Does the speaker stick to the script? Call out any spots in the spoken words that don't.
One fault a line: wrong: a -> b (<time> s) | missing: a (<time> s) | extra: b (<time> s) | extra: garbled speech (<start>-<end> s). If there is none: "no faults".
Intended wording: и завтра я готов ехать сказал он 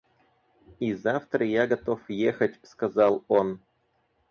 no faults